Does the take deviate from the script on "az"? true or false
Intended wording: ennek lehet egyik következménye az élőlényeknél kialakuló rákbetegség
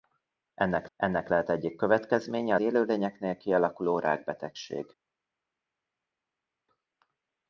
true